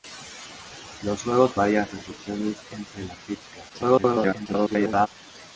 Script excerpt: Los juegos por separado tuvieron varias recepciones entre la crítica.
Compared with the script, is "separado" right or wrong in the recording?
wrong